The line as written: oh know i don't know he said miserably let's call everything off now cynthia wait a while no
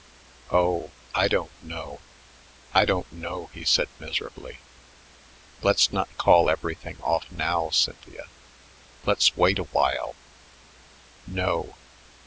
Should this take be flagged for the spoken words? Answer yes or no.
yes